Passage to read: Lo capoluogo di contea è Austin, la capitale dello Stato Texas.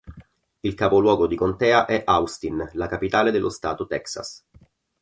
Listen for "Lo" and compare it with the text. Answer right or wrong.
wrong